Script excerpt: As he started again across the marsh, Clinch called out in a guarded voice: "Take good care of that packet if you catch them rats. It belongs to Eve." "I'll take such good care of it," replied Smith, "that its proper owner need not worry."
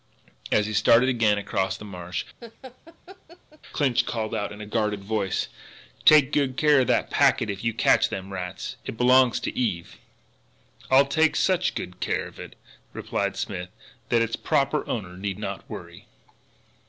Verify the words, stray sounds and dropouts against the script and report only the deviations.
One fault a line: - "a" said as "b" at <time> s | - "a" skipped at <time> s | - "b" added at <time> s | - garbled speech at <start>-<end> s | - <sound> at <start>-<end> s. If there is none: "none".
- laugh at 2.4-3.6 s